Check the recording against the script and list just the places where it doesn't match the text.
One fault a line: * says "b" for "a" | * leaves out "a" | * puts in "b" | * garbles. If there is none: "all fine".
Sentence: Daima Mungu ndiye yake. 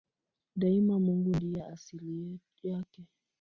* puts in "asili"